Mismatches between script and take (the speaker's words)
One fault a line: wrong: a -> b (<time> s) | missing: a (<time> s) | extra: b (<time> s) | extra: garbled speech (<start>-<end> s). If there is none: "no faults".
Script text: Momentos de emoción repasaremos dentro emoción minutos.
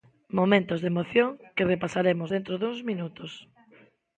extra: que (1.6 s)
wrong: emoción -> duns (2.6 s)